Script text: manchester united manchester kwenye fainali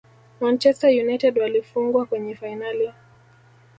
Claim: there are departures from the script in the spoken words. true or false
true